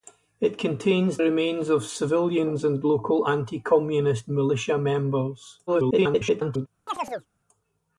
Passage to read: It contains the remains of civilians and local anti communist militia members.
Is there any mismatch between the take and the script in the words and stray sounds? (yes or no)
yes